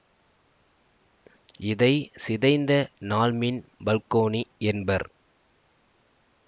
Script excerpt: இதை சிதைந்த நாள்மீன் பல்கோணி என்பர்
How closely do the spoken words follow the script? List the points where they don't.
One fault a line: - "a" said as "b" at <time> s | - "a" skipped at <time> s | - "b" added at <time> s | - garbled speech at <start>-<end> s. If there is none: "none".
none